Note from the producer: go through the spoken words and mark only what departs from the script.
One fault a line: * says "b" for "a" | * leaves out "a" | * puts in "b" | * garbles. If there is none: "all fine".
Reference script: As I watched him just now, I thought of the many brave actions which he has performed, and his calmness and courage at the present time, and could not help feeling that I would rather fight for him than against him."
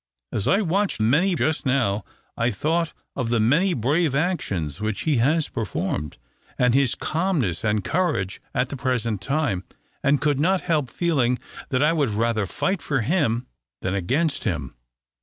* says "many" for "him"